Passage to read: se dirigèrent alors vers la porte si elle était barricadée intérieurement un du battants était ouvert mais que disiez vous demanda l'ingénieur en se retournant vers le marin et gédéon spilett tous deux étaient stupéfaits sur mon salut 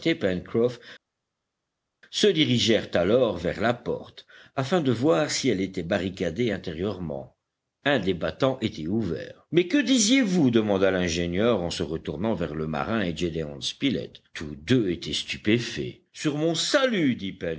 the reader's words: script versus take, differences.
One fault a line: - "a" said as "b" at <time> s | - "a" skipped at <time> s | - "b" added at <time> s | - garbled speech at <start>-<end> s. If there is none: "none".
- "afin de voir" added at 4.5 s
- "du" said as "des" at 8.0 s